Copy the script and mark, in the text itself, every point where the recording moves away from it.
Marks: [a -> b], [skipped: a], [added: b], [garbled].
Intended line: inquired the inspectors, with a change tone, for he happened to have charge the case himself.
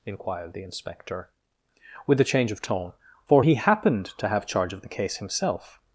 inquired the [inspectors, -> inspector] with a change [added: of] tone, for he happened to have charge [added: of] the case himself.